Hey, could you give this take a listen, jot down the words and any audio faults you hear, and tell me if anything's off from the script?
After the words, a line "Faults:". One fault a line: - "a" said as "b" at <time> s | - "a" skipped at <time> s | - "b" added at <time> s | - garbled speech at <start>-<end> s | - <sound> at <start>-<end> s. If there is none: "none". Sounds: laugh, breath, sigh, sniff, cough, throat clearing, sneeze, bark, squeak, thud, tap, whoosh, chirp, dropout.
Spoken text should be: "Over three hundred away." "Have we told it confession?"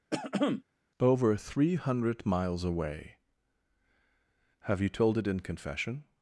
"Over three hundred miles away." "Have you told it in confession?"
Faults:
- throat clearing at 0.1-0.6 s
- "miles" added at 2.2 s
- "we" said as "you" at 4.8 s
- "in" added at 5.3 s